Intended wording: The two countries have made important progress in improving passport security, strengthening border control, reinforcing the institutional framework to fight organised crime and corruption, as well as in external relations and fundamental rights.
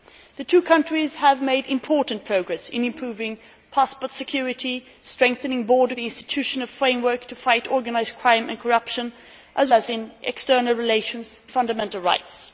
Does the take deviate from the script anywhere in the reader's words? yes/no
yes